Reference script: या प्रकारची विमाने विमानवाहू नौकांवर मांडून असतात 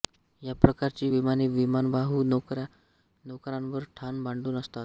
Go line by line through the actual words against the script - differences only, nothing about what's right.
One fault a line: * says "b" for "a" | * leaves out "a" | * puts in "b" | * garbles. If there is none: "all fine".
* puts in "ठाण"